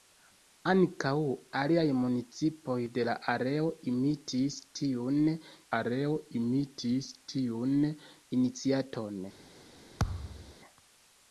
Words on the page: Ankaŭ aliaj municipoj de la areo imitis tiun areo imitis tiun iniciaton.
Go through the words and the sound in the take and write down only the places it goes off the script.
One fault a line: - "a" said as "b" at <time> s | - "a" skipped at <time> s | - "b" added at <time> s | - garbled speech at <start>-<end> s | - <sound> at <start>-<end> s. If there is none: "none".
- thud at 10.0-10.5 s